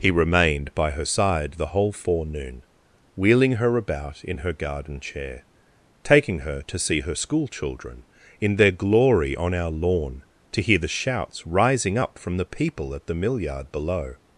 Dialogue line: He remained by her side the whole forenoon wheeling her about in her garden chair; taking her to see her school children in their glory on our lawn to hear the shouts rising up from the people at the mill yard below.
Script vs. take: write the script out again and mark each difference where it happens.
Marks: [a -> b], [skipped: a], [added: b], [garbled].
He remained by her side the whole forenoon wheeling her about in her garden chair; taking her to see her school children in their glory on our lawn to hear the shouts rising up from the people at the mill yard below.